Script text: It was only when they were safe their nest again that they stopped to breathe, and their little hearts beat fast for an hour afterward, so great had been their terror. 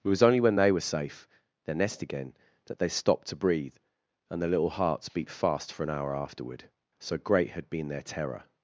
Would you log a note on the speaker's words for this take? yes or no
no